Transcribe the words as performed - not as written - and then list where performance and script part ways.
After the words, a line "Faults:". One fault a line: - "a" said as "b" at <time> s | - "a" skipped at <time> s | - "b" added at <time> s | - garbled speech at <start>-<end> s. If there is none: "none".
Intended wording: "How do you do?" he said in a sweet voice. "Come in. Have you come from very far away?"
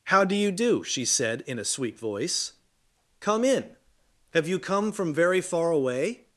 "How do you do?" she said in a sweet voice. "Come in. Have you come from very far away?"
Faults:
- "he" said as "she" at 0.8 s